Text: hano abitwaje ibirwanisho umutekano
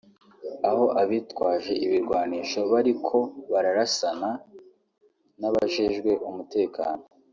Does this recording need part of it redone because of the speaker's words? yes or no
yes